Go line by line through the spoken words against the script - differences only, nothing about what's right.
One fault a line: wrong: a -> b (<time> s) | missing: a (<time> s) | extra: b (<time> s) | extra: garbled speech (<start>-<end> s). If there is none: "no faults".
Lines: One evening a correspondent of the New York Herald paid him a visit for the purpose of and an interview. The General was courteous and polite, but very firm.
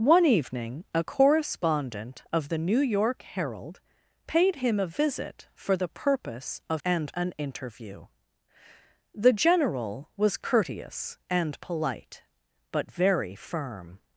no faults